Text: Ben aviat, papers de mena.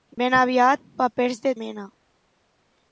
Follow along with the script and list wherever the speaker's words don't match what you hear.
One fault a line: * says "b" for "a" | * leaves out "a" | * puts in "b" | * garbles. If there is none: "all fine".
all fine